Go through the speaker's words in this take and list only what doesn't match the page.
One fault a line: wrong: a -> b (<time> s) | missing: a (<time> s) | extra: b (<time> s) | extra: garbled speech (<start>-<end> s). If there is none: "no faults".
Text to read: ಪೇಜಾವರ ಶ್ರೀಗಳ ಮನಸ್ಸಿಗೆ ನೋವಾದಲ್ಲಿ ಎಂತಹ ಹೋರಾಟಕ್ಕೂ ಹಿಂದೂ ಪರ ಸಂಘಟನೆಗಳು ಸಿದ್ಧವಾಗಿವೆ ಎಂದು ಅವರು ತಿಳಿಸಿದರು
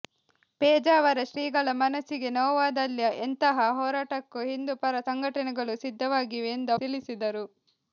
missing: ಅವರು (6.7 s)